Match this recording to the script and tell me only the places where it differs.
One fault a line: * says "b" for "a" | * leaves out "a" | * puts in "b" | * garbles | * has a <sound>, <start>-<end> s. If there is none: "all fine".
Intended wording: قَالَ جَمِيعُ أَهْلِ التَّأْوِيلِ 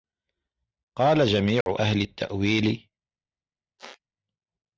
* has a dropout, 1.6-1.7 s
* has a squeak, 3.8-4.0 s